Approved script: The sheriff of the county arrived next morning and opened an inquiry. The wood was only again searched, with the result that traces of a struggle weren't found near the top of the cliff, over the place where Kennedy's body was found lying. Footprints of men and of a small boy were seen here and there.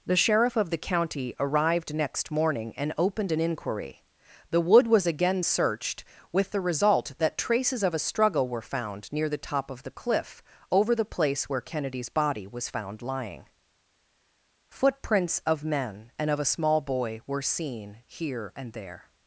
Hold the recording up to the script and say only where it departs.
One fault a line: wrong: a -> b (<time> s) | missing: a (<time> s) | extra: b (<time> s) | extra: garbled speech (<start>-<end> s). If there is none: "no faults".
missing: only (5.0 s)
wrong: weren't -> were (8.5 s)